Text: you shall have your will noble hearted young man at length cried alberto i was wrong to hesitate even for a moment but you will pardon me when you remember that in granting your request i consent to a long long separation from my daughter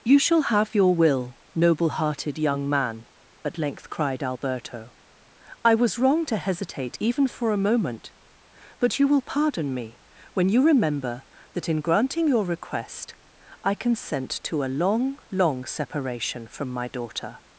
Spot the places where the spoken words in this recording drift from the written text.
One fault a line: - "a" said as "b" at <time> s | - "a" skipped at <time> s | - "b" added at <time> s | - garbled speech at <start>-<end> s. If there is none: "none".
none